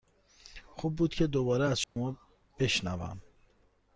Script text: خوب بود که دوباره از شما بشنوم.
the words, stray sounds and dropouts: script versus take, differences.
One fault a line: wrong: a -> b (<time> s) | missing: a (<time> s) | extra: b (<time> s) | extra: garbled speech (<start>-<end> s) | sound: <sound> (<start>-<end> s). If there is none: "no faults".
sound: dropout (1.8-2.0 s)